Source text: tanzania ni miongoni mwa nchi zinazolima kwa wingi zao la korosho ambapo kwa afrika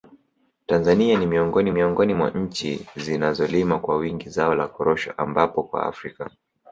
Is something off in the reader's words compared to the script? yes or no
yes